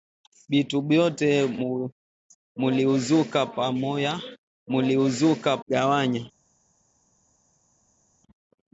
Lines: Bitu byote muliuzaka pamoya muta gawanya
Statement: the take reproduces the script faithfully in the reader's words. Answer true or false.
false